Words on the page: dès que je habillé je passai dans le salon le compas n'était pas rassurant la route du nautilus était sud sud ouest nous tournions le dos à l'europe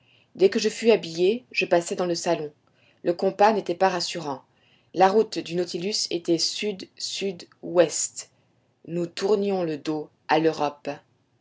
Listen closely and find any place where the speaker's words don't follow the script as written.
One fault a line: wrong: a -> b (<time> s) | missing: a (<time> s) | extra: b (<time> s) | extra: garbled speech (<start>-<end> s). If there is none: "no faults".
extra: fus (0.7 s)